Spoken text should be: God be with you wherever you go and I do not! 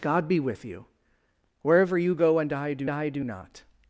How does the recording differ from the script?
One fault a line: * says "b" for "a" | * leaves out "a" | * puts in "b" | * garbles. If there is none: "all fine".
* puts in "I do"